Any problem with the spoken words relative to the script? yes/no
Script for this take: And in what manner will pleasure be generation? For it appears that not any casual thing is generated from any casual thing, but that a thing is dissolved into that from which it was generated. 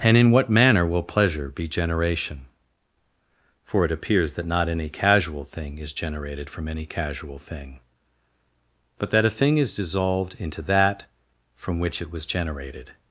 no